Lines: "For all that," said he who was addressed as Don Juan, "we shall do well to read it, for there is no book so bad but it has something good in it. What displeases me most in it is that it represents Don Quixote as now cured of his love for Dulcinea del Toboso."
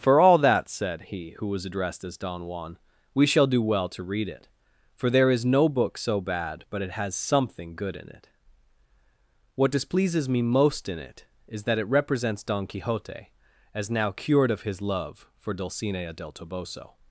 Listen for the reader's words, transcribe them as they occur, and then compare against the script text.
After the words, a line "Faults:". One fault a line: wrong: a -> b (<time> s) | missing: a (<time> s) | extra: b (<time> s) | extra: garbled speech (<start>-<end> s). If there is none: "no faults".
"For all that," said he who was addressed as Don Juan, "we shall do well to read it, for there is no book so bad but it has something good in it. What displeases me most in it is that it represents Don Quixote as now cured of his love for Dulcinea del Toboso."
Faults:
no faults